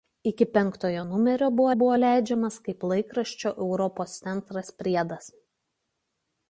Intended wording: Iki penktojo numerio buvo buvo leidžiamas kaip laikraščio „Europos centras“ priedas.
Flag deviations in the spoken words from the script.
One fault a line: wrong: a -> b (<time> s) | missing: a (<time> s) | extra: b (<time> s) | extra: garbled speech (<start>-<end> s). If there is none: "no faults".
no faults